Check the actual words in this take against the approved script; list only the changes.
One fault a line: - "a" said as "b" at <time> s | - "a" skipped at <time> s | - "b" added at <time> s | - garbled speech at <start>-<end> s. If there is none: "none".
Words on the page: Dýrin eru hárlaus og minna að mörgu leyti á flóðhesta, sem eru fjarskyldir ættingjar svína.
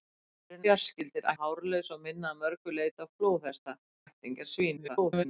- "eru" said as "fjarskyldir" at 0.6 s
- "sem eru fjarskyldir" skipped at 3.8 s
- garbled speech at 4.8-5.3 s